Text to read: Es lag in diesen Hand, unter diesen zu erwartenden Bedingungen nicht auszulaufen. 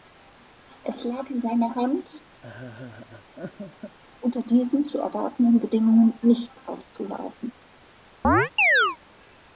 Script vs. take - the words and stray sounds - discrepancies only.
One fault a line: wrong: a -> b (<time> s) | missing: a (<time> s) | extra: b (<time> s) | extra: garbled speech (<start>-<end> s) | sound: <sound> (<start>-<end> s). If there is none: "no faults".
wrong: diesen -> seiner (1.4 s)
sound: laugh (2.4-4.0 s)
sound: chirp (8.2-9.0 s)